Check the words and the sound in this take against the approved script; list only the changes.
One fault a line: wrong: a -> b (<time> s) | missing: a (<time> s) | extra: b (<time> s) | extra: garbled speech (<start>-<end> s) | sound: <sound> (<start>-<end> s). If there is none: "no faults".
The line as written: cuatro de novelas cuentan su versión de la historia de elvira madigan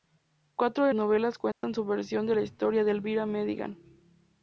sound: dropout (1.5-1.6 s)